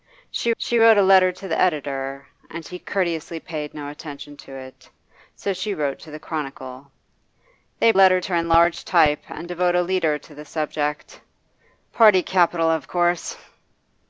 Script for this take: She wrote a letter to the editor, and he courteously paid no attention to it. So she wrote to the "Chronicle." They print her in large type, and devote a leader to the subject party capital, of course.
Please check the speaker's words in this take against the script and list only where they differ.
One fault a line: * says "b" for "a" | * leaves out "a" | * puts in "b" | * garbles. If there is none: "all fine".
* puts in "she"
* says "letter" for "print"